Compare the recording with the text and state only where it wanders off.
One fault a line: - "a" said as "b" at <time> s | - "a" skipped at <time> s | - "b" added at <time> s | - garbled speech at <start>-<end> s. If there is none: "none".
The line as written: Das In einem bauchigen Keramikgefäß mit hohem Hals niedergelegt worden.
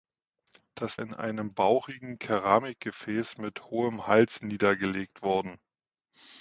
none